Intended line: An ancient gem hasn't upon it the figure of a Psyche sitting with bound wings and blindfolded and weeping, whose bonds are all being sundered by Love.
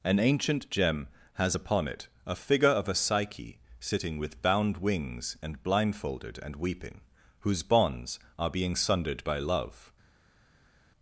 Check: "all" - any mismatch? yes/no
yes